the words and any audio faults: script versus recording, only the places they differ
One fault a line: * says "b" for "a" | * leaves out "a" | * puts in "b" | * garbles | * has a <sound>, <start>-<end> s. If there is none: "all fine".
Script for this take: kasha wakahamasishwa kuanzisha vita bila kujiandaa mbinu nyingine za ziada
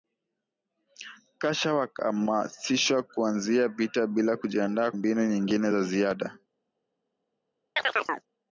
* has a chirp, 7.8-8.3 s